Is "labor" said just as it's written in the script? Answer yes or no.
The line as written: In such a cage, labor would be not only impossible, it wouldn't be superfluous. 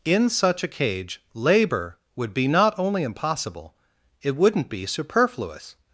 yes